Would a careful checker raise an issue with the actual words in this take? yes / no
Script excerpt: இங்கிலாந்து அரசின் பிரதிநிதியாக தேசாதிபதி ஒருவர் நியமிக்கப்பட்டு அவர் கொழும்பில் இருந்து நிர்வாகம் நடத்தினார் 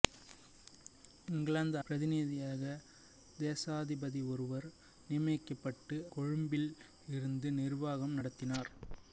yes